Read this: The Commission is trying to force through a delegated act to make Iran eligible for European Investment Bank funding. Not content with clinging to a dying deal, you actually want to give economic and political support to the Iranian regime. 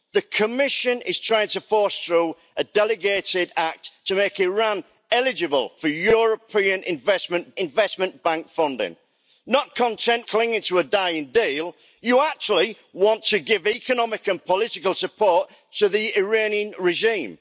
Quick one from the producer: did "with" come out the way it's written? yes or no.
no